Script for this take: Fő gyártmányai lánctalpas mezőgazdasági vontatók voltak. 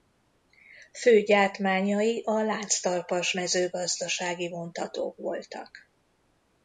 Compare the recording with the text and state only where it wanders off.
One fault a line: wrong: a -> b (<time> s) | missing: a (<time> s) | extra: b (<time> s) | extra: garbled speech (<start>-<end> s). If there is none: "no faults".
extra: a (2.2 s)